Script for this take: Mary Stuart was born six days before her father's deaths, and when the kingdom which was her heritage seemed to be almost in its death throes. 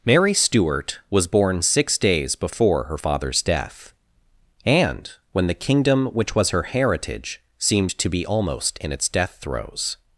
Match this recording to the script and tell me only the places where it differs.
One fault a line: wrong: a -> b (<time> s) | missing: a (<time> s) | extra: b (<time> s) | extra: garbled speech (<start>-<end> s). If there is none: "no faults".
wrong: deaths -> death (3.4 s)